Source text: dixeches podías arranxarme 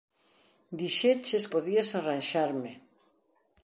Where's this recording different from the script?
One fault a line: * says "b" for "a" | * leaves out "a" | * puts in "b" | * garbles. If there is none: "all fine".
all fine